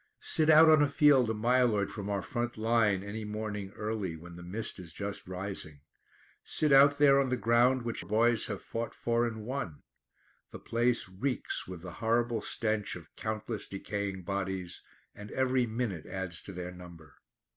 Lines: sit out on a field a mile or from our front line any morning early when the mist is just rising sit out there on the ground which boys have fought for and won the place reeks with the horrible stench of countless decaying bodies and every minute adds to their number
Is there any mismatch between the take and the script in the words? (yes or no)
no